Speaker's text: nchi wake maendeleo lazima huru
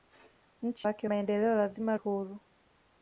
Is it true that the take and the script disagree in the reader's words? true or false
false